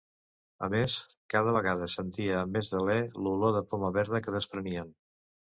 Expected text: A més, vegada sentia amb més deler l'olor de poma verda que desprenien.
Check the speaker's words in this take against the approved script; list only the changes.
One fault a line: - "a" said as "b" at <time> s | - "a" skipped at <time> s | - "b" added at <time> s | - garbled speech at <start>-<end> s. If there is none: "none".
- "cada" added at 1.3 s